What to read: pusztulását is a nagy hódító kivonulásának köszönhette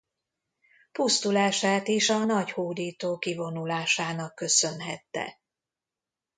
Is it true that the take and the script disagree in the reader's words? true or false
false